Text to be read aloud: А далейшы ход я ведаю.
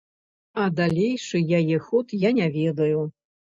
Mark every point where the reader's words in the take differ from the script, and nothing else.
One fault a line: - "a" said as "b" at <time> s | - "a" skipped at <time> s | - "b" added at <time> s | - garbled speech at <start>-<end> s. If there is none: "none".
- "яе" added at 1.6 s
- "не" added at 2.4 s